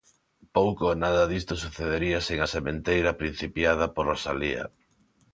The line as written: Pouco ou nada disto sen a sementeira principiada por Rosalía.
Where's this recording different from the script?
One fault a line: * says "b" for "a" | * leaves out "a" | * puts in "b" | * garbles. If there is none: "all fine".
* puts in "sucedería"